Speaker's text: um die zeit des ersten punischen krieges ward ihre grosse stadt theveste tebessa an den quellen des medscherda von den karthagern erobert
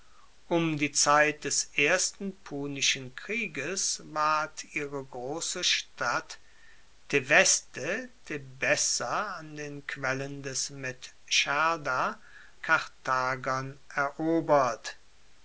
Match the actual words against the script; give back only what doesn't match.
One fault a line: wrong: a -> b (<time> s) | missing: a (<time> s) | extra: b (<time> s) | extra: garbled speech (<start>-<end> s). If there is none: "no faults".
missing: von den (12.2 s)